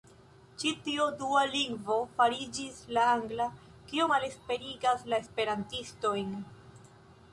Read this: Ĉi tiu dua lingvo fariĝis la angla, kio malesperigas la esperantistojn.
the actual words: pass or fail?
pass